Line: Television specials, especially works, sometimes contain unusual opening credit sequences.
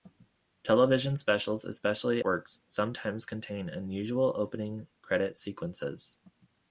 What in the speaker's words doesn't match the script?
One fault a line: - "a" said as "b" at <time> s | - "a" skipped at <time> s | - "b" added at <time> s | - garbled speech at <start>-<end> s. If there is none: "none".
none